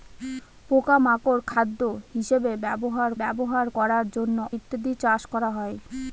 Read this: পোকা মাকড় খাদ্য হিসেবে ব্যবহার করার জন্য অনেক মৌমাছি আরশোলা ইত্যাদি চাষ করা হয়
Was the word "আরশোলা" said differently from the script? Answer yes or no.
yes